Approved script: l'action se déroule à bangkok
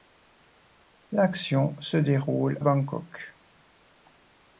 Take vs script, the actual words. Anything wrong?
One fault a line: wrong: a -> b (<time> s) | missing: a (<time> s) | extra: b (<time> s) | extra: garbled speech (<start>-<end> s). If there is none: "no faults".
missing: à (2.6 s)